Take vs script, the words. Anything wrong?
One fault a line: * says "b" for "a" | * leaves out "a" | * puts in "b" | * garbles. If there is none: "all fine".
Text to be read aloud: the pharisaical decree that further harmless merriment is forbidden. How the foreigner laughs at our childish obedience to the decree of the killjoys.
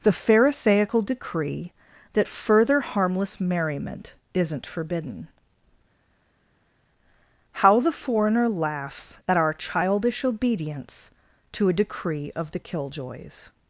* says "isn't" for "is"
* says "a" for "the"